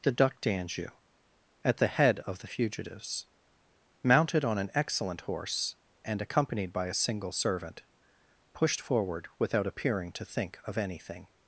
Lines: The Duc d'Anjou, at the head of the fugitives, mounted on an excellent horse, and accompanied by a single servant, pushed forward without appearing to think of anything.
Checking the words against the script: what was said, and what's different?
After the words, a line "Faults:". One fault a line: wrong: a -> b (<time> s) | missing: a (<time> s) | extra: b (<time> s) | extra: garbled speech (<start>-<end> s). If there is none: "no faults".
The Duc d'Anjou, at the head of the fugitives, mounted on an excellent horse, and accompanied by a single servant, pushed forward without appearing to think of anything.
Faults:
no faults